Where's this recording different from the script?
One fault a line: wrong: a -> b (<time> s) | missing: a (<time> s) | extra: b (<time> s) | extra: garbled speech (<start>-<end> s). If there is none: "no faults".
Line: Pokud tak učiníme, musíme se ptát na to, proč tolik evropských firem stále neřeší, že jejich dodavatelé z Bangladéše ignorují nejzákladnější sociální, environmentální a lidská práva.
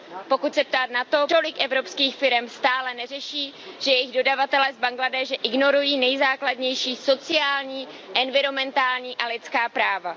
missing: tak učiníme musíme (0.5 s)
missing: proč (1.3 s)